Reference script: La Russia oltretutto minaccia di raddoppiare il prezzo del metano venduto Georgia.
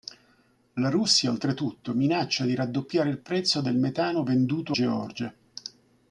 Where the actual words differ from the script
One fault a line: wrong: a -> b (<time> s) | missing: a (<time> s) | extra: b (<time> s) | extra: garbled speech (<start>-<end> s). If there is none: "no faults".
no faults